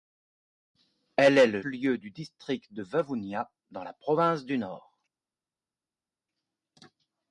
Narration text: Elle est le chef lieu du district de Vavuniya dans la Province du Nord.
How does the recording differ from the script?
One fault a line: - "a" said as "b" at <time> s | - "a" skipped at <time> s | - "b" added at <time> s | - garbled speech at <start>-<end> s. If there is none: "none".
- "chef" skipped at 1.6 s